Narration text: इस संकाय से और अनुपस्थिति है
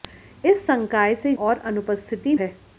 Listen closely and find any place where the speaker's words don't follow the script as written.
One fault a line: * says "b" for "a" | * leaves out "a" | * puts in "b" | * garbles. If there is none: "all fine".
all fine